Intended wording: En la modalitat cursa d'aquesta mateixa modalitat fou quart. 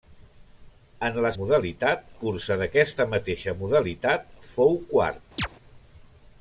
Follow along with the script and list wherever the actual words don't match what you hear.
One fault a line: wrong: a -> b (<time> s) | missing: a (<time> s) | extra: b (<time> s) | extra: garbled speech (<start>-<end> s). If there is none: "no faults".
no faults